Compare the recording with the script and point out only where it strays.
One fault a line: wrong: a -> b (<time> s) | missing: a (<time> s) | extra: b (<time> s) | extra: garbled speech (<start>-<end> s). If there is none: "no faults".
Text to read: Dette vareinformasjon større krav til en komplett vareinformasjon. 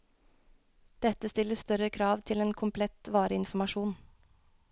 wrong: vareinformasjon -> stiller (1.3 s)